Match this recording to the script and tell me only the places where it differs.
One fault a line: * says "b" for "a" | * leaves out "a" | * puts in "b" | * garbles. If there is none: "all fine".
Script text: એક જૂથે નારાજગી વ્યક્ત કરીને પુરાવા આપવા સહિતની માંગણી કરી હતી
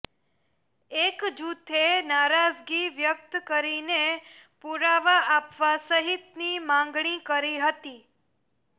all fine